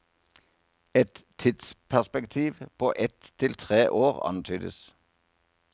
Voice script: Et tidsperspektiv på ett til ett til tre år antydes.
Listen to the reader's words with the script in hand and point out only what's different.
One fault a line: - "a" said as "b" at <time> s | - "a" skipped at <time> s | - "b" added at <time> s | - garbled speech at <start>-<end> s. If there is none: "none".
- "ett til" skipped at 3.5 s